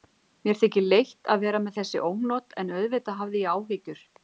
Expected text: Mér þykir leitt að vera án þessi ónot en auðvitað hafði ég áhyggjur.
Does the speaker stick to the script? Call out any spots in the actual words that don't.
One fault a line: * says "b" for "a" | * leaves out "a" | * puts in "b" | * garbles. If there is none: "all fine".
* says "með" for "án"